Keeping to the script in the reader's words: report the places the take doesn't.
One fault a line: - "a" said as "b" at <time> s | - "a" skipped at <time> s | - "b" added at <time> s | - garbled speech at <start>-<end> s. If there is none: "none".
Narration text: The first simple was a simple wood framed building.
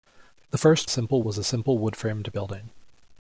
none